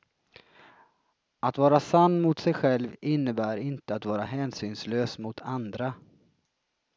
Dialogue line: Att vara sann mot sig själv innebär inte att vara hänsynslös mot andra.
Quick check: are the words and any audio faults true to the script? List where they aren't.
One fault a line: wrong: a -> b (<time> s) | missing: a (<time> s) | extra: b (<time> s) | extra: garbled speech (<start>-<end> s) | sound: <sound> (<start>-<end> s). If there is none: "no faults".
no faults